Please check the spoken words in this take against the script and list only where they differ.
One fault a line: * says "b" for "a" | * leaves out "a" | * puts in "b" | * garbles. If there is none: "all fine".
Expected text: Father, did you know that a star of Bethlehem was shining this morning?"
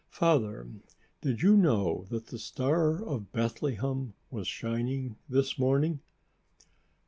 * says "the" for "a"